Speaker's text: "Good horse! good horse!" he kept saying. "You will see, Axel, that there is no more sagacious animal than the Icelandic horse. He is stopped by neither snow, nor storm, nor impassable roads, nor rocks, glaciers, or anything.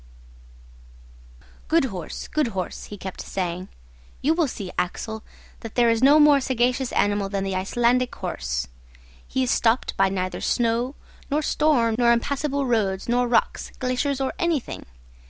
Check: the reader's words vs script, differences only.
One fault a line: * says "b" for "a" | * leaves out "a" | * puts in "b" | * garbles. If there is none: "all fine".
all fine